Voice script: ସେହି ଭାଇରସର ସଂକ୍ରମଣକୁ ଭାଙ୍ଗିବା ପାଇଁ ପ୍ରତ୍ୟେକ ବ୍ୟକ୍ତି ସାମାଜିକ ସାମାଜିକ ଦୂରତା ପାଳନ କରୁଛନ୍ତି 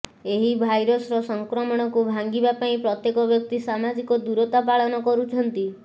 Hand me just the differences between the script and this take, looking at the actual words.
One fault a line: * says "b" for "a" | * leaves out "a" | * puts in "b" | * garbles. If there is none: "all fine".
* says "ଏହି" for "ସେହି"
* leaves out "ସାମାଜିକ"